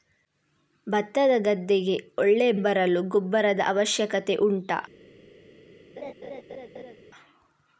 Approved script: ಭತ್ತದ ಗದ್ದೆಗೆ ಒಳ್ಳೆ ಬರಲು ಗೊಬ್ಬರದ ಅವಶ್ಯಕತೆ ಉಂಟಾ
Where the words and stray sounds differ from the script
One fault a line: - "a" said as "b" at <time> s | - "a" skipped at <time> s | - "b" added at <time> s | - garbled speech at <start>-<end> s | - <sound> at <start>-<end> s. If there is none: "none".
- laugh at 6.0-7.0 s